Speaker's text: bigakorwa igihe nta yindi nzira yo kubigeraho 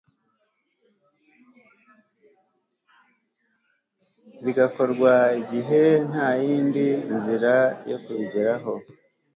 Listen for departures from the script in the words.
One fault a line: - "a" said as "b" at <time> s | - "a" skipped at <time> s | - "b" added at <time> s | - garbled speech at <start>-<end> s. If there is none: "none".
none